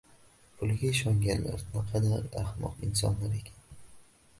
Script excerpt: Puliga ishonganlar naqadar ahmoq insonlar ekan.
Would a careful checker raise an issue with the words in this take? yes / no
no